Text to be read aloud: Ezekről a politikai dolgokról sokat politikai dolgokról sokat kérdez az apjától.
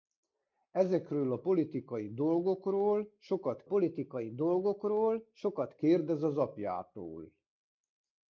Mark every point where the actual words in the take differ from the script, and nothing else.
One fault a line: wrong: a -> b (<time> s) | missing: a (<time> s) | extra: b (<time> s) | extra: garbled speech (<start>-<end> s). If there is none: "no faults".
no faults